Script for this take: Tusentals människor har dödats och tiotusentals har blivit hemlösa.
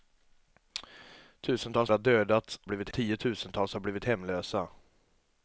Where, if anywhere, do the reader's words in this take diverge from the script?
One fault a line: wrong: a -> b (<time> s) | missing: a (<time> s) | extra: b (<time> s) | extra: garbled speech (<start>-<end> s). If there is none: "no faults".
missing: människor (1.9 s)
wrong: och -> blivit (2.6 s)